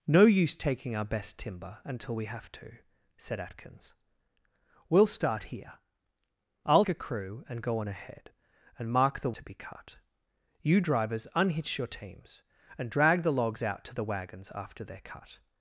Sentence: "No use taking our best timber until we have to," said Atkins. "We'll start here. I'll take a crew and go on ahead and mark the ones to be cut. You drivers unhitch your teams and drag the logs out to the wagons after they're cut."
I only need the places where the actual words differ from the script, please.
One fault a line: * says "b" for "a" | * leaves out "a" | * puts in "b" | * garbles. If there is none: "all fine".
* leaves out "take"
* leaves out "ones"